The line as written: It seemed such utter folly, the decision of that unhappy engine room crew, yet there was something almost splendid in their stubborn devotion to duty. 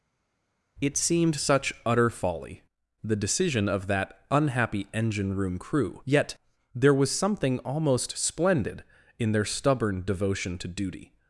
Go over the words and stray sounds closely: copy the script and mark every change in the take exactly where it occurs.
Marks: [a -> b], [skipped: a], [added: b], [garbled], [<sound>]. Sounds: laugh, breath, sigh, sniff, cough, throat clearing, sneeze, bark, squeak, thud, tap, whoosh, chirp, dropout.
It seemed such utter folly, the decision of that unhappy engine room crew, yet there was something almost splendid in their stubborn devotion to duty.